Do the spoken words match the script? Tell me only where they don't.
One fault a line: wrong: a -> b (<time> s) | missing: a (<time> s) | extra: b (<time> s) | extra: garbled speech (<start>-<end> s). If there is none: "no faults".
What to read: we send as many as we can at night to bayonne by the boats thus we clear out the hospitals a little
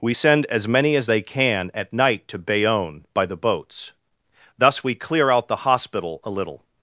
wrong: we -> they (1.1 s)
wrong: hospitals -> hospital (5.6 s)